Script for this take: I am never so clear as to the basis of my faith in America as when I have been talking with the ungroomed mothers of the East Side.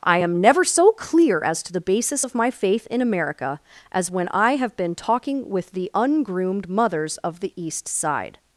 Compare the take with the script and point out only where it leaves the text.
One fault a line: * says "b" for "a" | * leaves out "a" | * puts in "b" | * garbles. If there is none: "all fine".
all fine